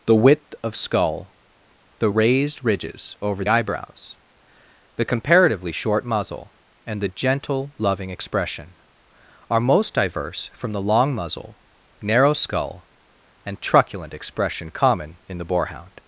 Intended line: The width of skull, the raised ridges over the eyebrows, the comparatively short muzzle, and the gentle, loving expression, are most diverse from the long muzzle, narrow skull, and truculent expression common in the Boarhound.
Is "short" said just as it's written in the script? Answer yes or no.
yes